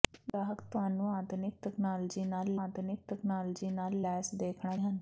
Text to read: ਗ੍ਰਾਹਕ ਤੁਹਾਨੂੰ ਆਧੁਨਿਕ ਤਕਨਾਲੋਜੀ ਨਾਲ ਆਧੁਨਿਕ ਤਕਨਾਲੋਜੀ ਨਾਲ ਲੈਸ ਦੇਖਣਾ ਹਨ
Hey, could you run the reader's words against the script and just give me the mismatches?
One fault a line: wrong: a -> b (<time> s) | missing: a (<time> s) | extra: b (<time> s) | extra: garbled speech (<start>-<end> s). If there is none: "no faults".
no faults